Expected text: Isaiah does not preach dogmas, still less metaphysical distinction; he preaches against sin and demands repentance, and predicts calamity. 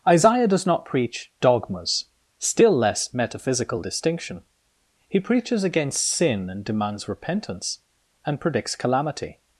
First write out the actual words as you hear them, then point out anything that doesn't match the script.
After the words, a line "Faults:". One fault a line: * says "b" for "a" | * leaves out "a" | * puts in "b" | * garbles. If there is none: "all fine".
Isaiah does not preach dogmas, still less metaphysical distinction; he preaches against sin and demands repentance, and predicts calamity.
Faults:
all fine